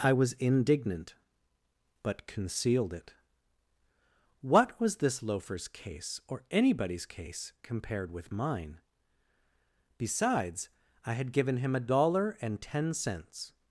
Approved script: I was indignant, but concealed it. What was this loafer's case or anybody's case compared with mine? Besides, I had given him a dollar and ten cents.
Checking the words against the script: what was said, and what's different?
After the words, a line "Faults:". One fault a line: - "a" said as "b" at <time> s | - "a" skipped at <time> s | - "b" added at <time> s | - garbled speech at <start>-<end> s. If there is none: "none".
I was indignant, but concealed it. What was this loafer's case or anybody's case compared with mine? Besides, I had given him a dollar and ten cents.
Faults:
none